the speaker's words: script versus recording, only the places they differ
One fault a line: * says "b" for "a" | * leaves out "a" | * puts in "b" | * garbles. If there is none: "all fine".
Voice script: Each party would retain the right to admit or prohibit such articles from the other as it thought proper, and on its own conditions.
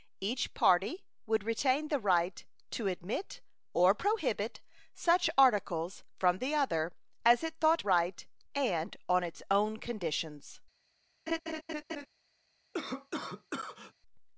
* says "right" for "proper"